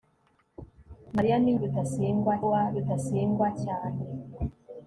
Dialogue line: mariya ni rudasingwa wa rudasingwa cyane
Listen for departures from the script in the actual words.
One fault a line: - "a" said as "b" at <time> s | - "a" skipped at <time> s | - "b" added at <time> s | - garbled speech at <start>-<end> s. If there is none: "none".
none